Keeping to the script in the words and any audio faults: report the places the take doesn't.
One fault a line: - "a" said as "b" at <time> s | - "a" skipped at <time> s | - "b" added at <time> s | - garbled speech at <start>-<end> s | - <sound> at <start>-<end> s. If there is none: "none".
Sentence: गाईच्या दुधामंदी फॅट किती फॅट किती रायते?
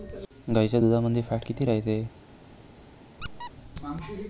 - "फॅट किती" skipped at 1.6 s
- squeak at 3.2-3.5 s